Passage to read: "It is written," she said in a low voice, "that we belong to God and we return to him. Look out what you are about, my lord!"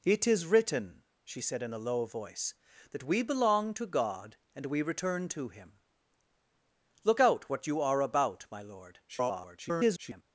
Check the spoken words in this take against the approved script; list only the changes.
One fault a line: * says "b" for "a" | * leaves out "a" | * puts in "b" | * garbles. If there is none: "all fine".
* garbles